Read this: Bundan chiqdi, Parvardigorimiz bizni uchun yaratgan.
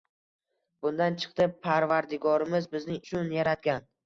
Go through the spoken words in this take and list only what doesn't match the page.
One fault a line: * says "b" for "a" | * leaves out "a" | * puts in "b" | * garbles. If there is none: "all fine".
all fine